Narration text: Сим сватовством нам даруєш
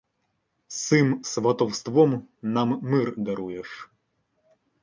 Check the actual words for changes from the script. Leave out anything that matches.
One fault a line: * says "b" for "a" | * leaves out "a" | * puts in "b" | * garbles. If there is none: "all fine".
* puts in "мир"